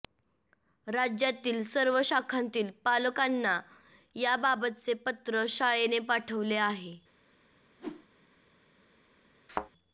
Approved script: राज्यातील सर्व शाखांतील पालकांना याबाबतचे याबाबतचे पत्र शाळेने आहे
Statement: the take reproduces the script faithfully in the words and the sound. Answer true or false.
false